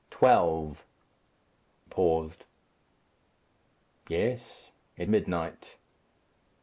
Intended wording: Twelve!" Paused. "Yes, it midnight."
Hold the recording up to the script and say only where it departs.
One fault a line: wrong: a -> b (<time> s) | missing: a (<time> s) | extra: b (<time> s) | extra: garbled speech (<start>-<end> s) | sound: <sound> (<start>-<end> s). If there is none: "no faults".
no faults